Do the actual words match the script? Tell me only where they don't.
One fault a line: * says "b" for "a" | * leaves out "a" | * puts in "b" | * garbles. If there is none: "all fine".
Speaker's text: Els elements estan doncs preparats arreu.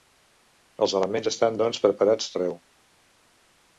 all fine